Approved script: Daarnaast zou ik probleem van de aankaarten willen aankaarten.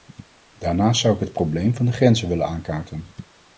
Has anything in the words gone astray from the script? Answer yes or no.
yes